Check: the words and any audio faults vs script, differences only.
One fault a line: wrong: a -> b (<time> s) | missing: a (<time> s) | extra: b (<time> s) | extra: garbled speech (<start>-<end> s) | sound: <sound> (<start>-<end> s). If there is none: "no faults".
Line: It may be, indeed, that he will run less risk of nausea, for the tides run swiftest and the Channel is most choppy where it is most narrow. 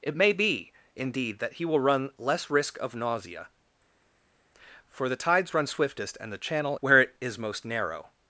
missing: is most choppy (6.8 s)